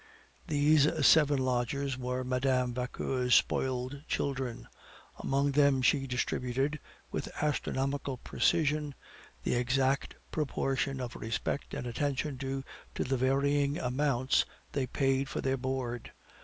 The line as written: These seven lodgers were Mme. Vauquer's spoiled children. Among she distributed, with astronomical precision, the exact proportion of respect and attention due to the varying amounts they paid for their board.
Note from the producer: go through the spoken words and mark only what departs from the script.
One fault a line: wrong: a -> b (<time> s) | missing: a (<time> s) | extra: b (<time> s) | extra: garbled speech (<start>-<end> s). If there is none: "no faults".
extra: them (5.5 s)